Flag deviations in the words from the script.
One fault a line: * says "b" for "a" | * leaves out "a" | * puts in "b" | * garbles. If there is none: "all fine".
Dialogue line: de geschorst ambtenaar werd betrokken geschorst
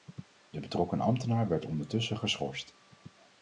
* says "betrokken" for "geschorst"
* says "ondertussen" for "betrokken"